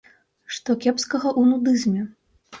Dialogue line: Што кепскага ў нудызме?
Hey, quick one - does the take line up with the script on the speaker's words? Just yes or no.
yes